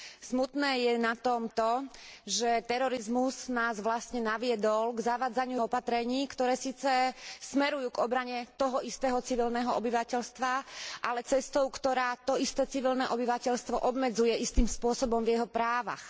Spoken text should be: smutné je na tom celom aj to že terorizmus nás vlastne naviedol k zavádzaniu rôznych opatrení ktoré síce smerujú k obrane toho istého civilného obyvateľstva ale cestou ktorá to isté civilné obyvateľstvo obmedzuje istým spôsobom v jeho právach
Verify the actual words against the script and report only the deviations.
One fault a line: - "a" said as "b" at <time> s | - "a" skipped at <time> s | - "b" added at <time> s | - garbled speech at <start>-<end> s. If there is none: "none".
- "celom aj" skipped at 1.5 s
- "rôznych" skipped at 5.6 s